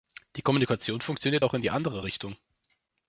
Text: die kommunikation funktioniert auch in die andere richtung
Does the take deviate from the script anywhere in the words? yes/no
no